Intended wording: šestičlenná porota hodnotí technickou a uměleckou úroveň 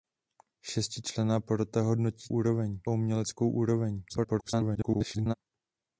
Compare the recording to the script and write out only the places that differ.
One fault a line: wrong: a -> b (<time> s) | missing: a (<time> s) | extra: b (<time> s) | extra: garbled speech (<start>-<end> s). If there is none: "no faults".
wrong: technickou -> úroveň (2.3 s)
extra: garbled speech (4.1-5.3 s)